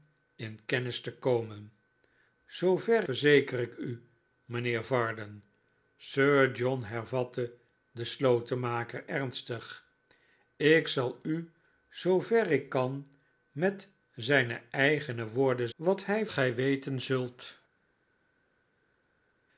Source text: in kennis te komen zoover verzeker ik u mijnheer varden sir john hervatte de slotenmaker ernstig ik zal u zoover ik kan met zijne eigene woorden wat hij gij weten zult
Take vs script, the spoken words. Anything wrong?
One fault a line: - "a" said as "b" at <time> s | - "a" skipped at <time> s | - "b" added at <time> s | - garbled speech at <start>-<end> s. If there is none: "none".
none